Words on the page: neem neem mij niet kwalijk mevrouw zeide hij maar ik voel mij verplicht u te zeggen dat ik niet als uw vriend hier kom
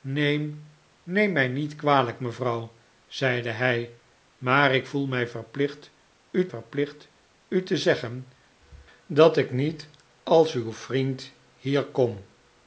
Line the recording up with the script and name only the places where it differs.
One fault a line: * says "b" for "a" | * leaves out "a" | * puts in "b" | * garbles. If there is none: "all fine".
* puts in "verplicht u"